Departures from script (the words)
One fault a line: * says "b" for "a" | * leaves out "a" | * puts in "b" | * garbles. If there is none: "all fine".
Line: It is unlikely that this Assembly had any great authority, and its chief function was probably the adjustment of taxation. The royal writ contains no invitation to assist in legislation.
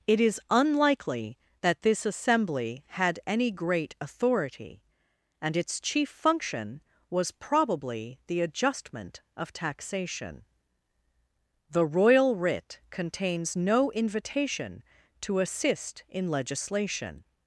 all fine